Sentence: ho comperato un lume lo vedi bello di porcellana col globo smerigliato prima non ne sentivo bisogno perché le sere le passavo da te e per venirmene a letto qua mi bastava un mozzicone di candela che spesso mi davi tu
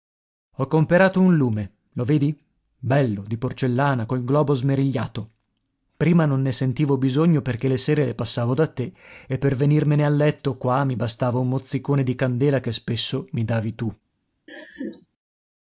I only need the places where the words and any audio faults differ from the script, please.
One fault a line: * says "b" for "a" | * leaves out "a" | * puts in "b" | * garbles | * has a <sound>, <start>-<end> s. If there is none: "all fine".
* has a laugh, 14.5-15.1 s